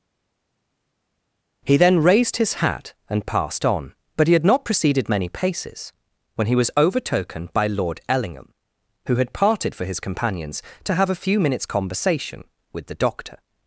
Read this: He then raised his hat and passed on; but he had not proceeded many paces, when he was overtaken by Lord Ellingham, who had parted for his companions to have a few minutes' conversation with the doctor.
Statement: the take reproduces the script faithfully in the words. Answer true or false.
true